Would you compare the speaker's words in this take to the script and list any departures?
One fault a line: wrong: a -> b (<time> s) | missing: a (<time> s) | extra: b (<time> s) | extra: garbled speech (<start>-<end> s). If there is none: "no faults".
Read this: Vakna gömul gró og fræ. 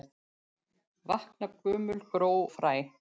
missing: og (2.3 s)